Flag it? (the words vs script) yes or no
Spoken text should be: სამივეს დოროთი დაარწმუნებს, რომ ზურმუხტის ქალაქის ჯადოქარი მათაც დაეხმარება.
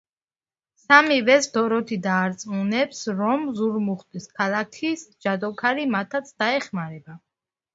no